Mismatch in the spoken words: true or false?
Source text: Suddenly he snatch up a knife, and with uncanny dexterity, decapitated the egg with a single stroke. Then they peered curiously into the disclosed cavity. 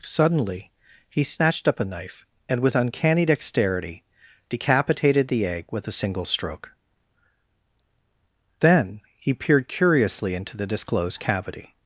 true